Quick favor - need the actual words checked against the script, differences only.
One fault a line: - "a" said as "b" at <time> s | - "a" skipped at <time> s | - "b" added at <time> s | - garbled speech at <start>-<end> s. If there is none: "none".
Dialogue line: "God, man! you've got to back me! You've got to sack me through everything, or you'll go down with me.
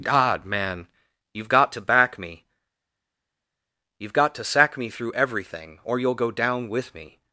none